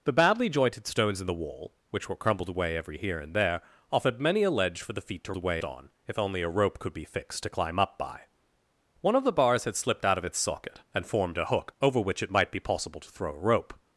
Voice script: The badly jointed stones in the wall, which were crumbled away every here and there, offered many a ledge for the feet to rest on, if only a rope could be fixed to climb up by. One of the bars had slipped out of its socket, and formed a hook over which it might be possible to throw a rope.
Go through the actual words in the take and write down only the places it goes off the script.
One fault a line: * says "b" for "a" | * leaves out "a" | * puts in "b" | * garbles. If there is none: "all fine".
* says "away" for "rest"